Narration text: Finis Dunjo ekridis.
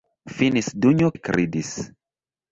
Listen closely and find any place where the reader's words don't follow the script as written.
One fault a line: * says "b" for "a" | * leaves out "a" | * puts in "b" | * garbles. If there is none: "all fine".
all fine